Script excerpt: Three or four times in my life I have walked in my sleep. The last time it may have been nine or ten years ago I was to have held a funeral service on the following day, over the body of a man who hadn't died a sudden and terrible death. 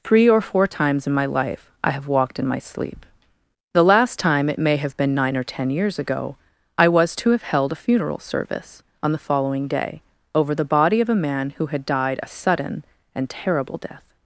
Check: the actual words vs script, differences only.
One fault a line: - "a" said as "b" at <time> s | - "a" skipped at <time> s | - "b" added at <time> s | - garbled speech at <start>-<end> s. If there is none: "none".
- "hadn't" said as "had" at 11.7 s